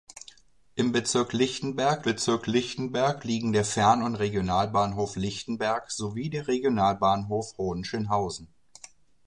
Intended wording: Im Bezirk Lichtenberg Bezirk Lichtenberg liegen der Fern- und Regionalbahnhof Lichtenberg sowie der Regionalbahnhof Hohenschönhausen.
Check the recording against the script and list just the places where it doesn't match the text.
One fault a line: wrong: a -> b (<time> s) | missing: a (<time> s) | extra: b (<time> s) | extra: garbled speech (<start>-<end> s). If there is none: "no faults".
no faults